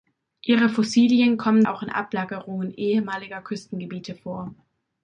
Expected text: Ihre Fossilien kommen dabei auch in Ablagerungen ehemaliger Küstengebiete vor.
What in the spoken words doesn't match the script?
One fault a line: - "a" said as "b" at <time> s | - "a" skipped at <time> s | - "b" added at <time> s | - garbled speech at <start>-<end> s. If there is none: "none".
- "dabei" skipped at 1.6 s